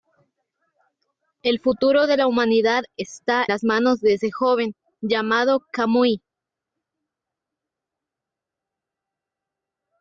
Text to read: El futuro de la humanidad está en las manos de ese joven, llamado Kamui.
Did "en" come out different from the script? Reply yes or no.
yes